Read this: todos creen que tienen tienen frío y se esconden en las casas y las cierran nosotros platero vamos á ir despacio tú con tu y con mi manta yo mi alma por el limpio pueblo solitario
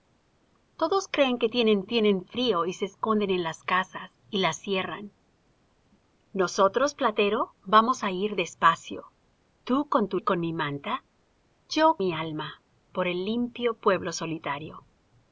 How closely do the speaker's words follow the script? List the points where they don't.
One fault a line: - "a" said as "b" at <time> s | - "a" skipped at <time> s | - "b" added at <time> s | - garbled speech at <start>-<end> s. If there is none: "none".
none